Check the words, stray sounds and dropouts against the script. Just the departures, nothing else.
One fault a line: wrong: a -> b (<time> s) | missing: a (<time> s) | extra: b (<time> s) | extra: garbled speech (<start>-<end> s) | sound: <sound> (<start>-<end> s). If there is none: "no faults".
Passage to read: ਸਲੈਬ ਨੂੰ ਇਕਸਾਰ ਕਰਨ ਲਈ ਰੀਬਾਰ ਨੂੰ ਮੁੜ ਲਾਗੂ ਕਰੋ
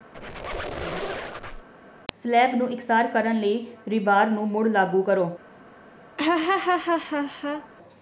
sound: squeak (0.1-1.7 s)
sound: laugh (6.2-7.7 s)